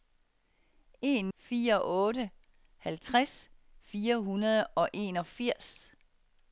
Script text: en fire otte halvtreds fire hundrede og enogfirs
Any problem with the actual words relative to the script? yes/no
no